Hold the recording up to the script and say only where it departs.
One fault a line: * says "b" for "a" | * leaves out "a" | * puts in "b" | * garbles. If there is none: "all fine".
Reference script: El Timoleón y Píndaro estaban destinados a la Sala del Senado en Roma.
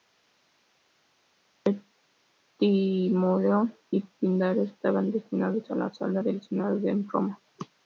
all fine